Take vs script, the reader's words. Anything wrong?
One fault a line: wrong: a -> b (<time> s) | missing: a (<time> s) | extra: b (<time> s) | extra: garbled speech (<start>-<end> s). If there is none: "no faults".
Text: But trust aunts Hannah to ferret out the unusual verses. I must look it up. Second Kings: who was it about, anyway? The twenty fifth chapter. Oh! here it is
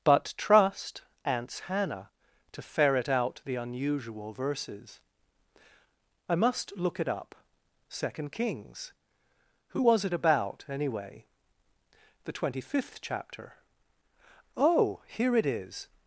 no faults